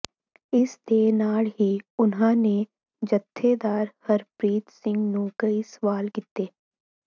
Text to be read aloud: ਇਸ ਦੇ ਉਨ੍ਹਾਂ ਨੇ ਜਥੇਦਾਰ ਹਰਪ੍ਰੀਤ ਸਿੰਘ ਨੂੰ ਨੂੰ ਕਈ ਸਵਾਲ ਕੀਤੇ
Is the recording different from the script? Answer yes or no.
yes